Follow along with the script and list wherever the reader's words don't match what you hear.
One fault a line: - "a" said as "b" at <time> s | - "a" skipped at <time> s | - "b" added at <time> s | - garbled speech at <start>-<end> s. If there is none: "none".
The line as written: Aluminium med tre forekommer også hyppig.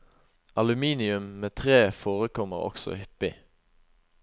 none